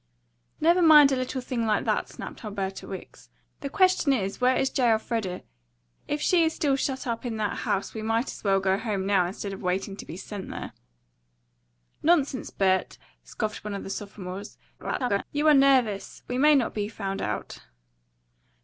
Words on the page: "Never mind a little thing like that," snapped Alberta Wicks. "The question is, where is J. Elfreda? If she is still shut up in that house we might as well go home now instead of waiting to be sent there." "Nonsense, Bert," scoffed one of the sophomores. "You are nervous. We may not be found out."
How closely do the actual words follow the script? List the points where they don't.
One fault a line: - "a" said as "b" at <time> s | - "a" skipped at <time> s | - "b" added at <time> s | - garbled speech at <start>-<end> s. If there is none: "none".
- garbled speech at 14.8-15.2 s